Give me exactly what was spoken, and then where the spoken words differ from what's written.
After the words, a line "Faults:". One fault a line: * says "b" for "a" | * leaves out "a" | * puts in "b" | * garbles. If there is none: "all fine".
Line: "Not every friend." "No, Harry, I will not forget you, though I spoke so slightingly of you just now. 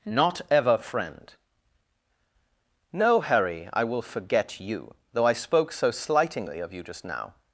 "Not ever friend." "No, Harry, I will forget you, though I spoke so slightingly of you just now.
Faults:
* says "ever" for "every"
* leaves out "not"